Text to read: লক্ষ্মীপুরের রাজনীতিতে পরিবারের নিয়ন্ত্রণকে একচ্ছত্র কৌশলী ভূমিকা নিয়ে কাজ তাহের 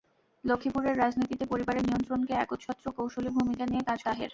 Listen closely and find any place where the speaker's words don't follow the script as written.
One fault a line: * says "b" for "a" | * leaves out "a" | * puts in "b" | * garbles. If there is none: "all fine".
all fine